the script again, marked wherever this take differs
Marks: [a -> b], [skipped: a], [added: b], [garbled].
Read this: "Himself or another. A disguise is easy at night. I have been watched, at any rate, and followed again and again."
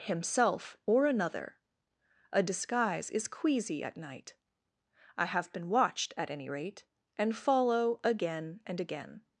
"Himself or another. A disguise is [easy -> queasy] at night. I have been watched, at any rate, and [followed -> follow] again and again."